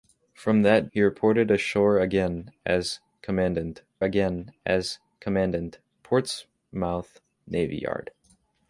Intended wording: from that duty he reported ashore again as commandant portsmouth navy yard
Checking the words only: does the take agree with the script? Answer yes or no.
no